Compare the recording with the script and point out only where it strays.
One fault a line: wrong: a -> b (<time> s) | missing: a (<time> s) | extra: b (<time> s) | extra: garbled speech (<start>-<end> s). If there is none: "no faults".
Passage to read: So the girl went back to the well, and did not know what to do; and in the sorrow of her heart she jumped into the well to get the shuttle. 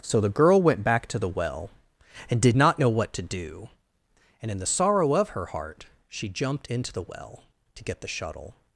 no faults